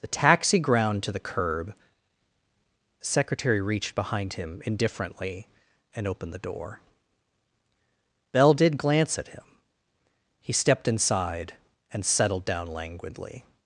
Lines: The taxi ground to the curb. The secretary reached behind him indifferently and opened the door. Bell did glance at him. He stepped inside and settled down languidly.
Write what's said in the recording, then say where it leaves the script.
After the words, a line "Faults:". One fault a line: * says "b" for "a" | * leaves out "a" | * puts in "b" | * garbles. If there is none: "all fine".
The taxi ground to the curb. The secretary reached behind him indifferently and opened the door. Bell did glance at him. He stepped inside and settled down languidly.
Faults:
all fine